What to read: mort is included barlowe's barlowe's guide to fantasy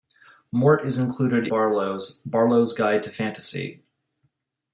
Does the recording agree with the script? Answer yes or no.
yes